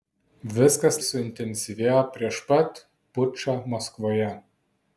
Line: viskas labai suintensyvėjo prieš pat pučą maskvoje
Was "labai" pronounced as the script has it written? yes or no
no